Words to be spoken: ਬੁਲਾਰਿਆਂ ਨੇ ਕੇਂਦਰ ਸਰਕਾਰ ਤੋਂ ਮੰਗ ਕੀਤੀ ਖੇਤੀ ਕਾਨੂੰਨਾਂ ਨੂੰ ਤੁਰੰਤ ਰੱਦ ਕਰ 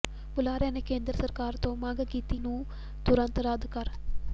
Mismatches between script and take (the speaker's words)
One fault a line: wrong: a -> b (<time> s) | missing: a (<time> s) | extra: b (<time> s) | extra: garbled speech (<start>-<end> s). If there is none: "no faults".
missing: ਖੇਤੀ ਕਾਨੂੰਨਾਂ (2.4 s)